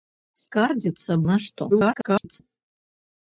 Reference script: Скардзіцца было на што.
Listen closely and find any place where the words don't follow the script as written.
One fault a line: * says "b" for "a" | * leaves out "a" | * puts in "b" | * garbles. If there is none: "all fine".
* leaves out "было"
* garbles